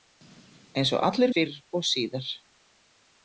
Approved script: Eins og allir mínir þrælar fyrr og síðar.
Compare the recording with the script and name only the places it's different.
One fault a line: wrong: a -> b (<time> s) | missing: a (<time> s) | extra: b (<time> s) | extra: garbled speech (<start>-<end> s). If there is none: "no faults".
missing: mínir þrælar (1.4 s)